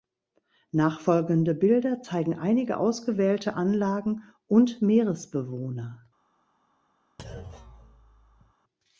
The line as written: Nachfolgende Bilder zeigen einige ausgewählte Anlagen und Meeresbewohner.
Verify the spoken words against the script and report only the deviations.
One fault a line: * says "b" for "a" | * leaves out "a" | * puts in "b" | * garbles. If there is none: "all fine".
all fine